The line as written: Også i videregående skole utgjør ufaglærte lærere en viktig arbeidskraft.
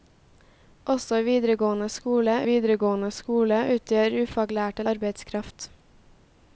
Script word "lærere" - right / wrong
wrong